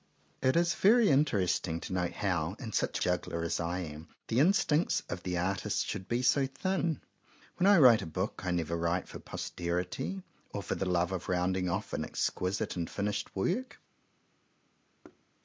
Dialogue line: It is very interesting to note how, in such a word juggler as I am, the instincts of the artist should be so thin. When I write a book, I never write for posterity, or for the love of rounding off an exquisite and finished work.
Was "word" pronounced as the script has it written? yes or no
no